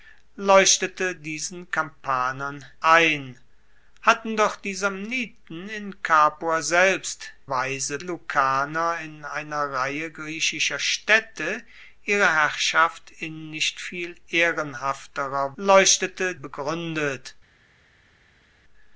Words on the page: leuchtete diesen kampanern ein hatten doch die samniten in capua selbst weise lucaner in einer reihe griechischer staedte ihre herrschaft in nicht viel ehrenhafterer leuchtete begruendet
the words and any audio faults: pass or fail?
pass